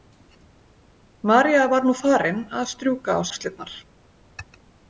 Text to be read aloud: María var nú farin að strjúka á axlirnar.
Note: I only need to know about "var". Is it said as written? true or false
true